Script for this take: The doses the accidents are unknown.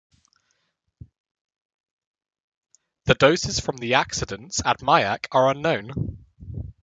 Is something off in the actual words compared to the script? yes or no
yes